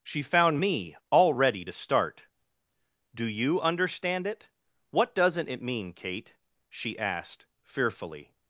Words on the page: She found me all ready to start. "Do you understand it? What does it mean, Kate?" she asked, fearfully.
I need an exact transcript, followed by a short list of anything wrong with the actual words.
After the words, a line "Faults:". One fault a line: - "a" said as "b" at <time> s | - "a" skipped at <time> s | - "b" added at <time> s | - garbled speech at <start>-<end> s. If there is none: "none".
She found me all ready to start. "Do you understand it? What doesn't it mean, Kate?" she asked, fearfully.
Faults:
- "does" said as "doesn't" at 5.2 s